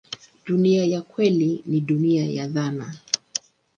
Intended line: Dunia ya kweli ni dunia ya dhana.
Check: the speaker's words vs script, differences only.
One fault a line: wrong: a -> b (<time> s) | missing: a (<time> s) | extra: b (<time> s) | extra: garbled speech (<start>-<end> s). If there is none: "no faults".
no faults